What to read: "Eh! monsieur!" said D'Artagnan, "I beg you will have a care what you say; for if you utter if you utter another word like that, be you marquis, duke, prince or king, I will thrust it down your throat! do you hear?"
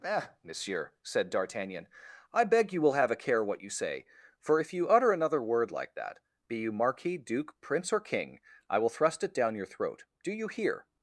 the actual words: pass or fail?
fail